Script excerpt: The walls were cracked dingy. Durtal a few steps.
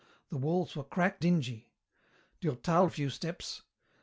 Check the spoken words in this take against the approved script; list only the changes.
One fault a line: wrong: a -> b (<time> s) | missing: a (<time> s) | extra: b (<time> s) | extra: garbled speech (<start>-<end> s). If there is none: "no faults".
no faults